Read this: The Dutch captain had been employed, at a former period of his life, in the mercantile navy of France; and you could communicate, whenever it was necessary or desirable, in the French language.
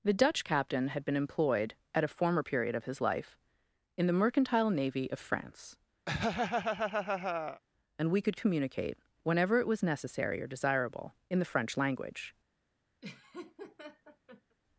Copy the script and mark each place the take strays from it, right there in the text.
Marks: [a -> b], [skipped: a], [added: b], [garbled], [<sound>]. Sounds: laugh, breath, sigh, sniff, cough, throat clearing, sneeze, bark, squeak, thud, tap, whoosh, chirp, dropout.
The Dutch captain had been employed, at a former period of his life, in the mercantile navy of France; [laugh] and [you -> we] could communicate, whenever it was necessary or desirable, in the French language. [laugh]